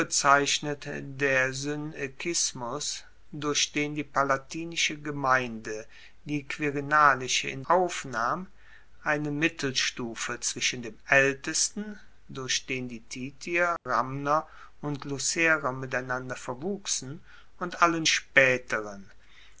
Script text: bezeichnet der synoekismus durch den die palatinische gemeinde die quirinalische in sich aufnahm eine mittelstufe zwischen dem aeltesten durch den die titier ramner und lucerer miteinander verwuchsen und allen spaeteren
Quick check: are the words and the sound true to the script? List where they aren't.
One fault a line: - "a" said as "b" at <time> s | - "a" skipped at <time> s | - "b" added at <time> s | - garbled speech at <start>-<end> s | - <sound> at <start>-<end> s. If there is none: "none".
- "sich" skipped at 7.6 s
- dropout at 13.8-13.9 s